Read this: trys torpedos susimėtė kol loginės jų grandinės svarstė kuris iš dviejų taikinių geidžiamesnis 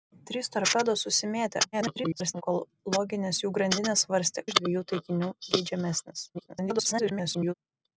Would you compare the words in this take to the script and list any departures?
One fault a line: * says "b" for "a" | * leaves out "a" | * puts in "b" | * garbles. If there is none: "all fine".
* garbles
* leaves out "kuris"
* garbles